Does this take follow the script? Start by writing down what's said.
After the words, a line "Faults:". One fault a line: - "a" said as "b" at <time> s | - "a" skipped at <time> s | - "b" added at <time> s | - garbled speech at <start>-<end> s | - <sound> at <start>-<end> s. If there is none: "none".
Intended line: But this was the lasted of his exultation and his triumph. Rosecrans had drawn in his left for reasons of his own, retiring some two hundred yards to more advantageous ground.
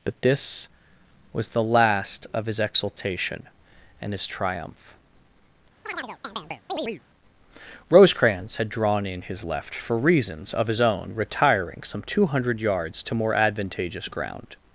But this was the last of his exultation and his triumph. Rosecrans had drawn in his left for reasons of his own, retiring some two hundred yards to more advantageous ground.
Faults:
- "lasted" said as "last" at 1.6 s
- chirp at 5.8-7.0 s